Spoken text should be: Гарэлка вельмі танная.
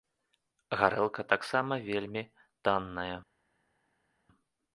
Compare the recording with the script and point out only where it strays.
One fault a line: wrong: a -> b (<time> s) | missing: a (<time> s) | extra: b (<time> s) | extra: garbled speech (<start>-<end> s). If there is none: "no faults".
extra: таксама (1.4 s)